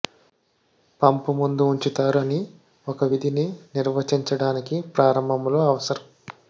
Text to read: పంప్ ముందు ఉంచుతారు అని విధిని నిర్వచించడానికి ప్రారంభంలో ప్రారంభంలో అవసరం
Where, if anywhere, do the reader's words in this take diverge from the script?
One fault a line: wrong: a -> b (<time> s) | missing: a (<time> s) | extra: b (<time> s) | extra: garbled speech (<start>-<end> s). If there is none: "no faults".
extra: ఒక (2.9 s)
missing: ప్రారంభంలో (5.6 s)